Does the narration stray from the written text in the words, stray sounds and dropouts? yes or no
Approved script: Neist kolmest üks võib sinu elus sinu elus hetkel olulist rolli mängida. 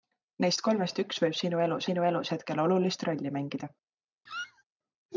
yes